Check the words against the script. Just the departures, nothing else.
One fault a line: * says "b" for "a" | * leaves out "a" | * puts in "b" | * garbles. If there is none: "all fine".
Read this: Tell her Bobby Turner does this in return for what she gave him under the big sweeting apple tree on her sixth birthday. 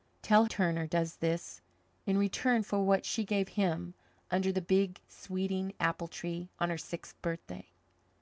* leaves out "her Bobby"